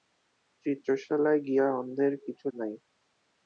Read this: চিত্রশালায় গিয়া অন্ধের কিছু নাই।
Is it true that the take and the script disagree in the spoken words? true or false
false